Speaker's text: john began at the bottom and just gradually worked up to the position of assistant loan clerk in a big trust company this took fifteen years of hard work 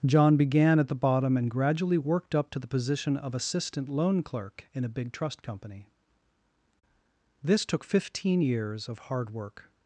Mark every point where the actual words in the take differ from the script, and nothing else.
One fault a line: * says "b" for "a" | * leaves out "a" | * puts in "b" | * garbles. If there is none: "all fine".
* leaves out "just"